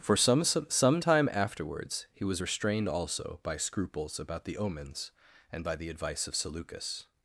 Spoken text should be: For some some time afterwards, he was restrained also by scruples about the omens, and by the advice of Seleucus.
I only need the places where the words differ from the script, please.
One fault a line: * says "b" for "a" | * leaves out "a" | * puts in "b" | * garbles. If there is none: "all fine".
all fine